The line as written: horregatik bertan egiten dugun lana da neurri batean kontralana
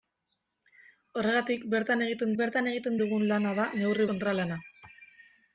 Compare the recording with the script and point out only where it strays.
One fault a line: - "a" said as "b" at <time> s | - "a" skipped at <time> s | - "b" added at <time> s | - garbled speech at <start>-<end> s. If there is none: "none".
- "bertan egiten" added at 2.4 s
- "batean" skipped at 4.1 s